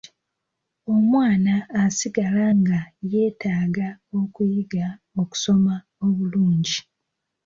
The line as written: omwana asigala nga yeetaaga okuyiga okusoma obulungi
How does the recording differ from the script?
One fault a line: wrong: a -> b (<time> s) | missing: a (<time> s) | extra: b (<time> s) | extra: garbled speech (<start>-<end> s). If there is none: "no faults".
no faults